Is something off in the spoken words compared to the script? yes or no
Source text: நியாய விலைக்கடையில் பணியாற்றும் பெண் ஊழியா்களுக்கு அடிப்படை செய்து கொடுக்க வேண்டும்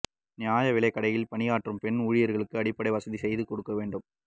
yes